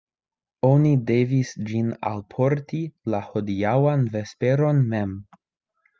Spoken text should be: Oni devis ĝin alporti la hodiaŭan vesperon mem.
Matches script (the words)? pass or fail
pass